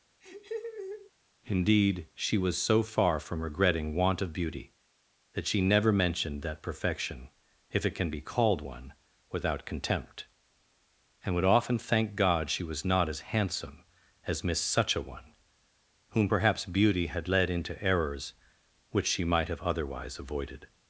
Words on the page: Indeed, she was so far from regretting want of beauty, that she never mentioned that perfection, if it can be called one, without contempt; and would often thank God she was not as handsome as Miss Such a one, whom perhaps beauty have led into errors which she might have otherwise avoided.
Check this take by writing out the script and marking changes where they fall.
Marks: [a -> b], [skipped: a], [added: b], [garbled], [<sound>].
[laugh] Indeed, she was so far from regretting want of beauty, that she never mentioned that perfection, if it can be called one, without contempt; and would often thank God she was not as handsome as Miss Such a one, whom perhaps beauty [have -> had] led into errors which she might have otherwise avoided.